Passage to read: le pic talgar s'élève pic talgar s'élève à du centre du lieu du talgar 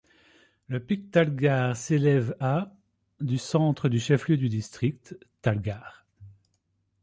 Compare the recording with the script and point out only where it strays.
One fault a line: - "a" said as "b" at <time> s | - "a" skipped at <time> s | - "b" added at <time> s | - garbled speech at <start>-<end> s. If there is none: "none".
- "pic talgar s'élève" skipped at 2.4 s
- "chef" added at 4.0 s
- "district" added at 4.5 s